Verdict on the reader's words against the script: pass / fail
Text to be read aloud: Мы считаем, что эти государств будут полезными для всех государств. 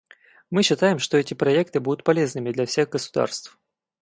fail